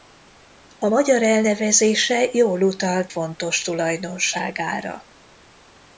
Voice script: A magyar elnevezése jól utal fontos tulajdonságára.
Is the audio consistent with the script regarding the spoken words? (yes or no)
yes